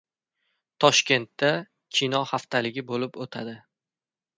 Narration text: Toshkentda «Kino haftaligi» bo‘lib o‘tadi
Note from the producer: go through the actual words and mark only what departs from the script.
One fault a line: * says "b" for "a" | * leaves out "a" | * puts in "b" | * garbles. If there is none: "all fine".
all fine